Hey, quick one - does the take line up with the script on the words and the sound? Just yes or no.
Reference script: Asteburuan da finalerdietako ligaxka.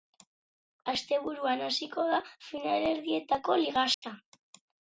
no